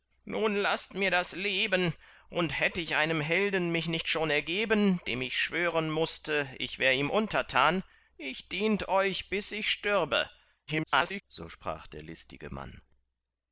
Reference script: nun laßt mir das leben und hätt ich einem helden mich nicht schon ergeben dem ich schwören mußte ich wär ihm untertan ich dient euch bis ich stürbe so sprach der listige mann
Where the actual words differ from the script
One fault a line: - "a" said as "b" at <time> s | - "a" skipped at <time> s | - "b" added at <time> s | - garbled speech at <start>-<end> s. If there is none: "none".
- garbled speech at 10.7-11.2 s